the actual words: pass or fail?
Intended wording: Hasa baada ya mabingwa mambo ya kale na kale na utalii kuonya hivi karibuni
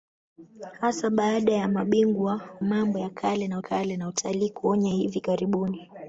pass